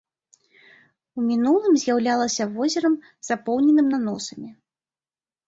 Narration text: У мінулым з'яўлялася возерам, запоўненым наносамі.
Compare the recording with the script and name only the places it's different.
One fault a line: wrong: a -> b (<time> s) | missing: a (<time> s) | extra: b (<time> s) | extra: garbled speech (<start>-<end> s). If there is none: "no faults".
no faults